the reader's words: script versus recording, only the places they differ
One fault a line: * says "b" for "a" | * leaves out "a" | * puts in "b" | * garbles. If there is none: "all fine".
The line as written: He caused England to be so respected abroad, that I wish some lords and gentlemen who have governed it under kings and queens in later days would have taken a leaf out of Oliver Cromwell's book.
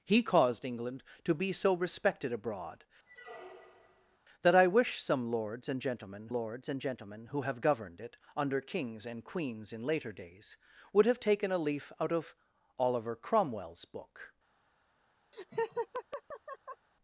* puts in "lords and gentlemen"